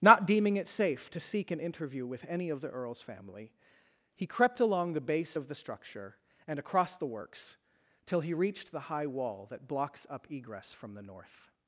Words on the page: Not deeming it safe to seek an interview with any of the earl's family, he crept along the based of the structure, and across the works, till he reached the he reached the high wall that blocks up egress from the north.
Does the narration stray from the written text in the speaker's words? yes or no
yes